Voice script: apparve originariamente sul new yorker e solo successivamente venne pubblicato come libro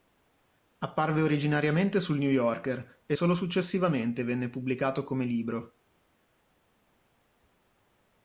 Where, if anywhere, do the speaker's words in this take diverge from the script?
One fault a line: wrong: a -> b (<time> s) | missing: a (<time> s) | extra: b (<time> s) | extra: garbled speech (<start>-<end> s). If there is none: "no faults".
no faults